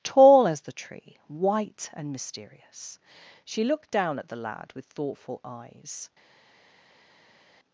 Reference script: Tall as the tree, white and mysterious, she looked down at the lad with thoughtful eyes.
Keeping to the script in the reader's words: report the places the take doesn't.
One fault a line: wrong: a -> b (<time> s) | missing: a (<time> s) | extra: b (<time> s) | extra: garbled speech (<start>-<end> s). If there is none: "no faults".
no faults